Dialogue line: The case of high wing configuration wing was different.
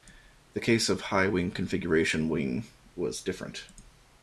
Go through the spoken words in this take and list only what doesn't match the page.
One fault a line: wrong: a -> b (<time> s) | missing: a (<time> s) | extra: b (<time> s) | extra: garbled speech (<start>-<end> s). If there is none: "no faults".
no faults